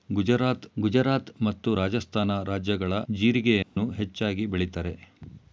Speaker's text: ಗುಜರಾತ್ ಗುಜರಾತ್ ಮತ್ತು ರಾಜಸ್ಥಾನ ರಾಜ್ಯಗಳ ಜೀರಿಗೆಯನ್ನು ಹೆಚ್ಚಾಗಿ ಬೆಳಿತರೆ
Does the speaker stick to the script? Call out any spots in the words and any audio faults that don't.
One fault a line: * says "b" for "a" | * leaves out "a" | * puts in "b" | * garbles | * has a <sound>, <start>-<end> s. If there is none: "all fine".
* has a dropout, 3.6-3.8 s